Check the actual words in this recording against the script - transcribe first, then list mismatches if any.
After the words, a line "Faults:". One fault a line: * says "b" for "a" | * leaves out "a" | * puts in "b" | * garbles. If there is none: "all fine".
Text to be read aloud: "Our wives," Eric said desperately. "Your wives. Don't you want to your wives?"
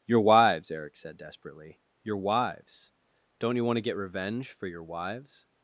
"Your wives," Eric said desperately. "Your wives. Don't you want to get revenge for your wives?"
Faults:
* says "Your" for "Our"
* puts in "get revenge for"